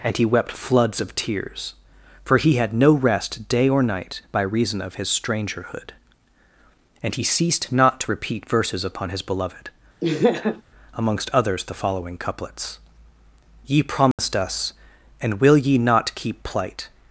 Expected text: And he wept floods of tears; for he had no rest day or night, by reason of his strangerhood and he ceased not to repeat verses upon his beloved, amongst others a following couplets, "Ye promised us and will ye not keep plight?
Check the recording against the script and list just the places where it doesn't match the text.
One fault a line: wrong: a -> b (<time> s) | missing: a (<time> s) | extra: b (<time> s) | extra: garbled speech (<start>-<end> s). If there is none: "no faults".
wrong: a -> the (11.6 s)